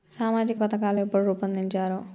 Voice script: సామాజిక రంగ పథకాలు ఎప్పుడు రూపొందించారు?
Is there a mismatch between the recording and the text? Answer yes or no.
yes